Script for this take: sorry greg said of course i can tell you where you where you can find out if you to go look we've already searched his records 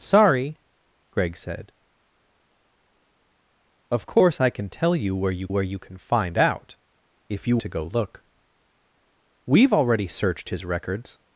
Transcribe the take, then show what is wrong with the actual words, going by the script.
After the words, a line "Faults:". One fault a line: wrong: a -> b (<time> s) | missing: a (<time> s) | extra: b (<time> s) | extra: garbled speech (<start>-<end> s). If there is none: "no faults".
sorry greg said of course i can tell you where you where you can find out if you to go look we've already searched his records
Faults:
no faults